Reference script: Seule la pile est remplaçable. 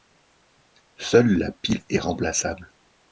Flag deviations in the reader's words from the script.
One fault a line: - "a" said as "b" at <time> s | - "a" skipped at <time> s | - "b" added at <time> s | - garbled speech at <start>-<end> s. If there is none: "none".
none